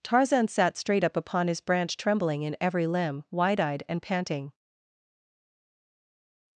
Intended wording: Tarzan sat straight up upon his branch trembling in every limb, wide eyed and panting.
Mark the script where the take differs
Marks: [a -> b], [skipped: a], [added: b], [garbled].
Tarzan sat straight up upon his branch trembling in every limb, wide eyed and panting.